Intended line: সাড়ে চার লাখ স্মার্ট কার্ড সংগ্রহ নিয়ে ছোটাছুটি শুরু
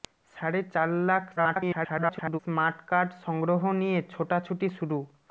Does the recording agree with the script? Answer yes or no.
no